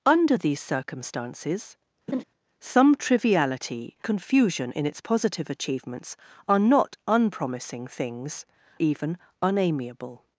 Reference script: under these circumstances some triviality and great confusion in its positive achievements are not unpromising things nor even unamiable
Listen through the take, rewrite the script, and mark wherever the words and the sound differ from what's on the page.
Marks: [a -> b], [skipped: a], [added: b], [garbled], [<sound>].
under these circumstances [laugh] some triviality [skipped: and great] confusion in its positive achievements are not unpromising things [skipped: nor] even unamiable